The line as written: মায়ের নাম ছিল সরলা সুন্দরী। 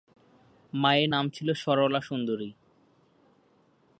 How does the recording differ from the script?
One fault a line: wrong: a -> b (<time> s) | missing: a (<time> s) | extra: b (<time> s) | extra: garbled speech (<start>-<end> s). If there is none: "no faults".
no faults